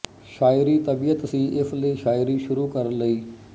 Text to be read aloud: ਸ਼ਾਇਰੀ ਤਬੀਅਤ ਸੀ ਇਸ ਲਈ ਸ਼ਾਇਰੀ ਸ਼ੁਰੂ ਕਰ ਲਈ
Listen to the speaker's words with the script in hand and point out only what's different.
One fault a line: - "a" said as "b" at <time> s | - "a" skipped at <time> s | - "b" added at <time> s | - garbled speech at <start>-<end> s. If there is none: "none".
none